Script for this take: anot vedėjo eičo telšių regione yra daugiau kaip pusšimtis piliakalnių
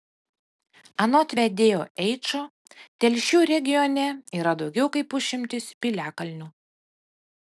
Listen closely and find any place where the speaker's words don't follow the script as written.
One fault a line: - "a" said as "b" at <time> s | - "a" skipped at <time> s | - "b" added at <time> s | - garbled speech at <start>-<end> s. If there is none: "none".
none